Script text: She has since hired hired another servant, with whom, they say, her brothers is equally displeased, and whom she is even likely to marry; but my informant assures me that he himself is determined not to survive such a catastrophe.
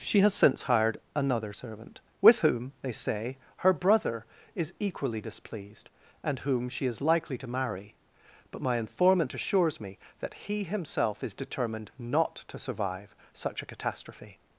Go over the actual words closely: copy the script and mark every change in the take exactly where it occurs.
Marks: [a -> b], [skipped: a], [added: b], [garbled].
She has since hired [skipped: hired] another servant, with whom, they say, her [brothers -> brother] is equally displeased, and whom she is [skipped: even] likely to marry; but my informant assures me that he himself is determined not to survive such a catastrophe.